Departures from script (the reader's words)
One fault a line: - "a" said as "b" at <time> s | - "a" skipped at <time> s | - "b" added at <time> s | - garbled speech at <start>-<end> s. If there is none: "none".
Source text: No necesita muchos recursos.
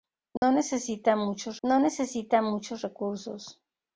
- "no necesita muchos" added at 1.6 s